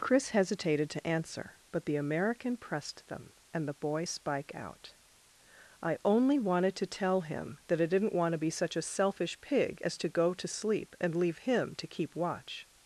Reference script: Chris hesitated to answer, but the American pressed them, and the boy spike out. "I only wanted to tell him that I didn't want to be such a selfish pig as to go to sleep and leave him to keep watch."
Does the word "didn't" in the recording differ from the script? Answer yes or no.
no